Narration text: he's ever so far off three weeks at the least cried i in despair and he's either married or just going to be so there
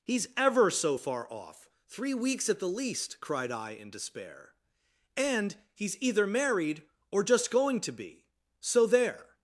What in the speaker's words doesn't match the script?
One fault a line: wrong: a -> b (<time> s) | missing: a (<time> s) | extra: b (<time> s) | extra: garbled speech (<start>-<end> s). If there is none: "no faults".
no faults